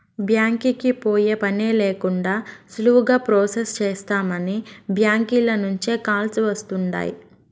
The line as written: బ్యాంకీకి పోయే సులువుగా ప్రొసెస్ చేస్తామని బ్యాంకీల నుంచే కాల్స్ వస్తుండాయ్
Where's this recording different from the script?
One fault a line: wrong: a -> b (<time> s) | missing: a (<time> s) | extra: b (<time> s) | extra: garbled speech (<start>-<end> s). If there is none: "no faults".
extra: పనే లేకండా (1.4 s)